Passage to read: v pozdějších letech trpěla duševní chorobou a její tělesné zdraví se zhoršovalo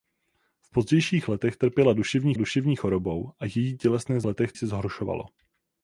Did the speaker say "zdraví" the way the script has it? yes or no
no